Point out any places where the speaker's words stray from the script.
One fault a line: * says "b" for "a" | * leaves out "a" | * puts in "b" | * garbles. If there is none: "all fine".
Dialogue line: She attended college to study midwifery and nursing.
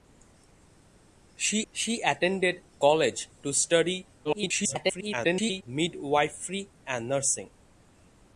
* puts in "she"
* garbles